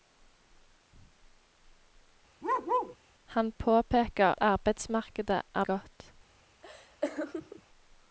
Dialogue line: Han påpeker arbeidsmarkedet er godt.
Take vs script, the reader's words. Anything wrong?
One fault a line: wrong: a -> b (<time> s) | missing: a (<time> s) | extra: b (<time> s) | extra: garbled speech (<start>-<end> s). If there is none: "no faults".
no faults